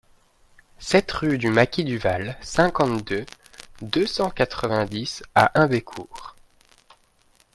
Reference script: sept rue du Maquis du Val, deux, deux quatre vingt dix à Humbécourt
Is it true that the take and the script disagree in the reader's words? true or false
true